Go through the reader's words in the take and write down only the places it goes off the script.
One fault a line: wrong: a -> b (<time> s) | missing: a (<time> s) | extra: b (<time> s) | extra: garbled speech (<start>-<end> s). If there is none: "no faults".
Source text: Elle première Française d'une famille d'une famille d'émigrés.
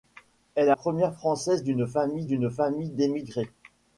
no faults